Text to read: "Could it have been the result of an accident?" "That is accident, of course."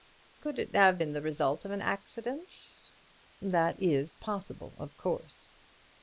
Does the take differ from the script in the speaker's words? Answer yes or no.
yes